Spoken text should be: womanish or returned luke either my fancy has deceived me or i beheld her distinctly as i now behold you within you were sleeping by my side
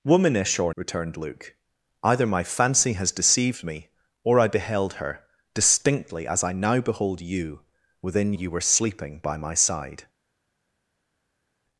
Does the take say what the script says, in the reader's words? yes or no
yes